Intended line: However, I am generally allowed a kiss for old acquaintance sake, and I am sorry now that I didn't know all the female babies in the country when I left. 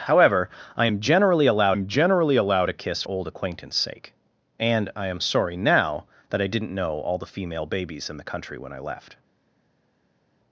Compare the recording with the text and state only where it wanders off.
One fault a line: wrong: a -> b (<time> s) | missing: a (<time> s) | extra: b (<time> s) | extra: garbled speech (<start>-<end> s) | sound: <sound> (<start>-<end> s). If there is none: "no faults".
extra: am generally allowed (1.7 s)
missing: for (3.0 s)